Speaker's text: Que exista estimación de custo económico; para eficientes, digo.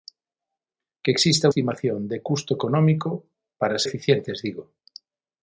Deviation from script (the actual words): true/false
false